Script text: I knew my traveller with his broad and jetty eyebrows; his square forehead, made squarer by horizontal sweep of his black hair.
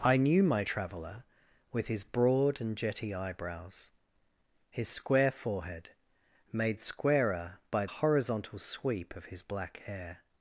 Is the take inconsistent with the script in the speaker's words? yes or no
no